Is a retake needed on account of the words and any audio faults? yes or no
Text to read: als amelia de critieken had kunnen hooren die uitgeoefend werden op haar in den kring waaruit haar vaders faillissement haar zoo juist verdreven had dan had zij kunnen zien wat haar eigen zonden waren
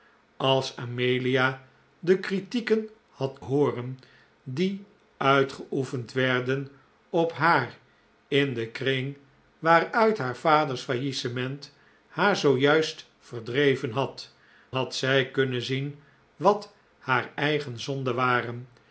yes